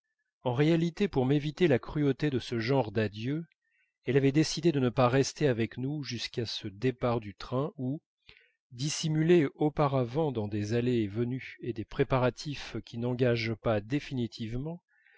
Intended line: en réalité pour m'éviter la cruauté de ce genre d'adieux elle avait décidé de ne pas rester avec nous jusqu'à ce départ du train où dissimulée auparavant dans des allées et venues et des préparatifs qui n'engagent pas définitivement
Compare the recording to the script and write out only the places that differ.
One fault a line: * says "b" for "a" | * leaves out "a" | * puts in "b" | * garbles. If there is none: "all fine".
all fine